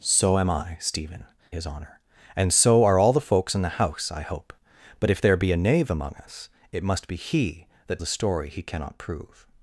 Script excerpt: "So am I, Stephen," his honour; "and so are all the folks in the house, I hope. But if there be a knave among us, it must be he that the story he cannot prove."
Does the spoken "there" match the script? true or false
true